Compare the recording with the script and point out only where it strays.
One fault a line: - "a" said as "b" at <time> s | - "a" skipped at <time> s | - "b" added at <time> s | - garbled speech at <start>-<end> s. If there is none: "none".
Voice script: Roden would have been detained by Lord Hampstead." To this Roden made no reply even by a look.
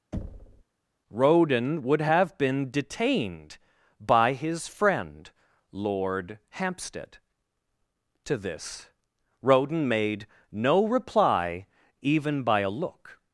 - "his friend" added at 4.3 s